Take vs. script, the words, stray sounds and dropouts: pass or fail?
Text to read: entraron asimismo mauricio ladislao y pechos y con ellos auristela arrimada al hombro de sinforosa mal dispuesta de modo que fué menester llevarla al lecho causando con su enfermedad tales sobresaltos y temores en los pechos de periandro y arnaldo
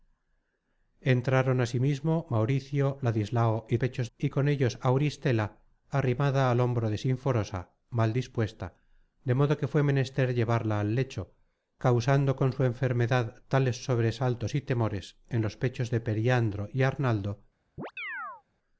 fail